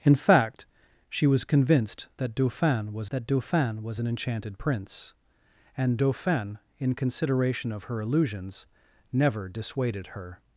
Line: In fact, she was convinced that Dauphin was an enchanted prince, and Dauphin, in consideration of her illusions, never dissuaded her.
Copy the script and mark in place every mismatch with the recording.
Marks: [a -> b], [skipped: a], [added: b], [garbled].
In fact, she was convinced that Dauphin was [added: that Dauphin was] an enchanted prince, and Dauphin, in consideration of her illusions, never dissuaded her.